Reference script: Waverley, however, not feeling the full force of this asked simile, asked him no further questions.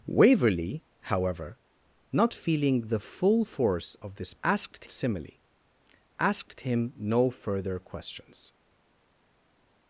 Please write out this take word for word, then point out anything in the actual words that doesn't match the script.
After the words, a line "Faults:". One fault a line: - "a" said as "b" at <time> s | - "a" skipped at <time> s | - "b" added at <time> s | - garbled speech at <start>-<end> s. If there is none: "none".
Waverley, however, not feeling the full force of this asked simile, asked him no further questions.
Faults:
none